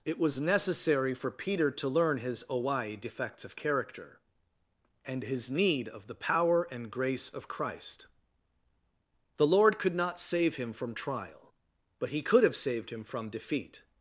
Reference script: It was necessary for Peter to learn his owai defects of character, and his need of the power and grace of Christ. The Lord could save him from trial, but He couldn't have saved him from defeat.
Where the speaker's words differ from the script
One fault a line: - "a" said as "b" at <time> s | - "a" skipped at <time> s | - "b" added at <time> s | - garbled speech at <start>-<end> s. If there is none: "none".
- "not" added at 9.9 s
- "couldn't" said as "could" at 12.2 s